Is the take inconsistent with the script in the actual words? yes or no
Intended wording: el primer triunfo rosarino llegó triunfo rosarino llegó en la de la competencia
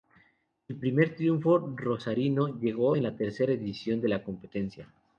yes